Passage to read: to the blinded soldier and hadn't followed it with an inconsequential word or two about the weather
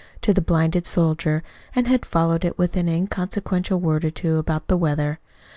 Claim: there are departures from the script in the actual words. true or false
true